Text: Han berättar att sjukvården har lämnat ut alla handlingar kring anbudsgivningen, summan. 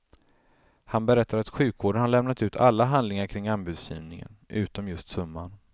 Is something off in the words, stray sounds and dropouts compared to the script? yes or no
yes